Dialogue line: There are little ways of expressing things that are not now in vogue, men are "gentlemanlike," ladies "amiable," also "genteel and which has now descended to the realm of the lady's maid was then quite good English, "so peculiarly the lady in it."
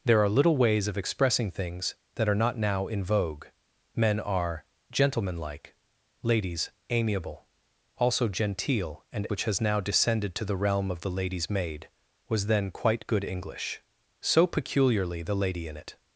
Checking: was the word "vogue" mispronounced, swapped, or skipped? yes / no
no